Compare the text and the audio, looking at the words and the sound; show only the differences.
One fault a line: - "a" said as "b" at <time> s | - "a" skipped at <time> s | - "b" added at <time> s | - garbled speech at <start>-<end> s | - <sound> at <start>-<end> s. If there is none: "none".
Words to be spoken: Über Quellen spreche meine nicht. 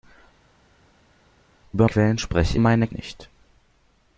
none